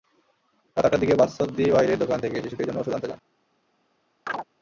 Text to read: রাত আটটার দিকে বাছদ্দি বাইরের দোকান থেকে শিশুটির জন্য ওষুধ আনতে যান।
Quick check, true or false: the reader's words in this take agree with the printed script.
true